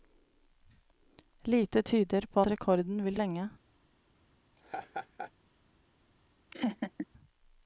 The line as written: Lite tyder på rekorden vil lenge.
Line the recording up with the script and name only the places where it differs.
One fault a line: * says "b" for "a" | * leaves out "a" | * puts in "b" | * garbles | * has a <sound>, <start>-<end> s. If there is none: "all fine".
* has a laugh, 4.6-5.3 s
* has a laugh, 6.5-7.1 s